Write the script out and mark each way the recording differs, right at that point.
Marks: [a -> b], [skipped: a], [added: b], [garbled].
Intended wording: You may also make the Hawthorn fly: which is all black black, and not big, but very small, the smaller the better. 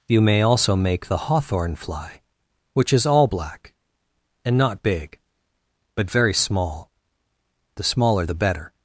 You may also make the Hawthorn fly: which is all black [skipped: black,] and not big, but very small, the smaller the better.